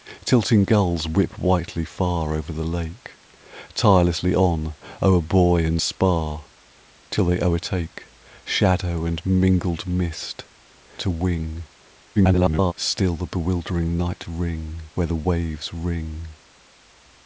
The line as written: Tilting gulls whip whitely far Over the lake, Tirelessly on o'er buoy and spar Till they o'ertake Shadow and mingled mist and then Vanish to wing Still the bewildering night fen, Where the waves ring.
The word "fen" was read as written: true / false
false